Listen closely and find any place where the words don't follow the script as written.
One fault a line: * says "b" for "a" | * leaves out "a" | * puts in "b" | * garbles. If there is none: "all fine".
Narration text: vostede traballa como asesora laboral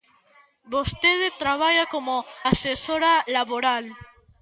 all fine